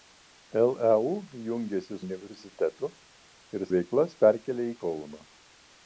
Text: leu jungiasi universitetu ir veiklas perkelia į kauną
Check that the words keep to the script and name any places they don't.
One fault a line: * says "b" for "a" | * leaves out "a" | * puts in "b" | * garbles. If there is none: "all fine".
all fine